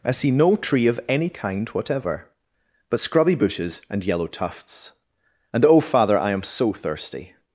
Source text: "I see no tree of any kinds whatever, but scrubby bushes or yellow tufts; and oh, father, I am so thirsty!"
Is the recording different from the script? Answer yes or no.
yes